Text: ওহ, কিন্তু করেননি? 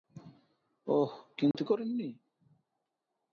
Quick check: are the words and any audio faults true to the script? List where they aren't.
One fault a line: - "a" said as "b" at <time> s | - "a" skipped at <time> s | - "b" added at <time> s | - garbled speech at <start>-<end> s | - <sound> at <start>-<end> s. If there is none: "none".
- dropout at 1.5-1.5 s